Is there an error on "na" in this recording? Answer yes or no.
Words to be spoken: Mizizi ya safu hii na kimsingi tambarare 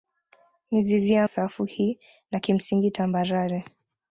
no